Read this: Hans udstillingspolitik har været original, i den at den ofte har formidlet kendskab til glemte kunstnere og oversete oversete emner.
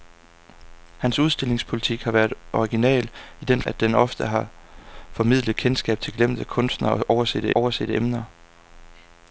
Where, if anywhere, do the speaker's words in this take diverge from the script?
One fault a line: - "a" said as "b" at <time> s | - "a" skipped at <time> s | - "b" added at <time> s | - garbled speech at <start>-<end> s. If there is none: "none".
none